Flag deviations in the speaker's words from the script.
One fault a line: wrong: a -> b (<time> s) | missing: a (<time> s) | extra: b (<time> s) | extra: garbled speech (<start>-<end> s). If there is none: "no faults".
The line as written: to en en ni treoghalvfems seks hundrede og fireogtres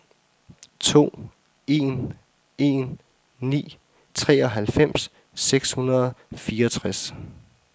no faults